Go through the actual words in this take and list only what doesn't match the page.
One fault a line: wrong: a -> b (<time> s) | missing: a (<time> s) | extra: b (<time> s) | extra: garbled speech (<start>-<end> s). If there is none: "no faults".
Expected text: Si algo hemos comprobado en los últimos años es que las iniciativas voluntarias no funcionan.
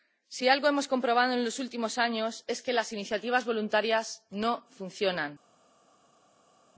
no faults